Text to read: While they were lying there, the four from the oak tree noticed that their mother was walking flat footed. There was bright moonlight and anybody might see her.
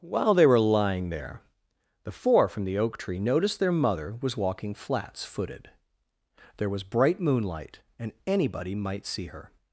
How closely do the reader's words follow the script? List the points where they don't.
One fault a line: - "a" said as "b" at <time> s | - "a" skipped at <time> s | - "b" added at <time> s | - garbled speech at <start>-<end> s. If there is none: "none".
- "that" skipped at 3.6 s
- "flat" said as "flats" at 4.7 s